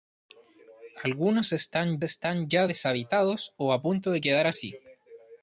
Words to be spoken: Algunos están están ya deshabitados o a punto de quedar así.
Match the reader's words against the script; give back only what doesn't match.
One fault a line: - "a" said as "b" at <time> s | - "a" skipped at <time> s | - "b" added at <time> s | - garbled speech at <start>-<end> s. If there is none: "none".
none